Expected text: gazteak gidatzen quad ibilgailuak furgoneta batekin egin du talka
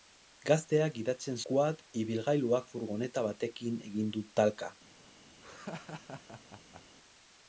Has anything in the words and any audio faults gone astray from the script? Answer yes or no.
yes